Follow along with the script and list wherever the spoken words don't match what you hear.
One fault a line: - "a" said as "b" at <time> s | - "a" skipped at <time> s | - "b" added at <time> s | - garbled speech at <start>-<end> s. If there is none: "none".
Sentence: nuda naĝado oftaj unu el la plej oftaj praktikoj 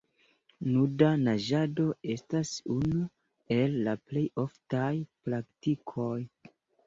- "oftaj" said as "estas" at 2.1 s